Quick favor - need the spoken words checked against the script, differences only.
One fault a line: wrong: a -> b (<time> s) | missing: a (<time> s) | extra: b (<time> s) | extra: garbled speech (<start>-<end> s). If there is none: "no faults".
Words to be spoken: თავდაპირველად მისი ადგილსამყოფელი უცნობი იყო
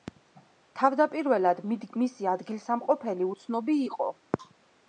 no faults